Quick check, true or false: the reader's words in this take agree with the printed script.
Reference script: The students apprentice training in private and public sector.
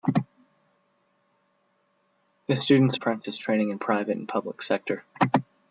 true